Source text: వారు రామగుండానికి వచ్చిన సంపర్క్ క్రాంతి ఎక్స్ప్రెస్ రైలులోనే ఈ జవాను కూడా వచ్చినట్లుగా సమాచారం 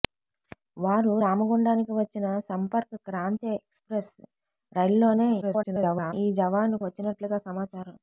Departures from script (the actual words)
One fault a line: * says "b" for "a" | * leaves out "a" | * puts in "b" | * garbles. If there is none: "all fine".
* garbles
* leaves out "కూడా"